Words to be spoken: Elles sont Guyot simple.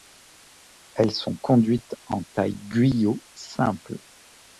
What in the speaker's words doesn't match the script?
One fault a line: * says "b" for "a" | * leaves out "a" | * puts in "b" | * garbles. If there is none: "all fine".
* puts in "conduites en taille"